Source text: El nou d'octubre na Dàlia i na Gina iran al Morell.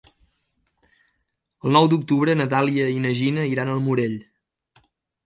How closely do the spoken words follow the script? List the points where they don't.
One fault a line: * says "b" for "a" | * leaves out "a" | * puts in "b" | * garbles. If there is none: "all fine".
all fine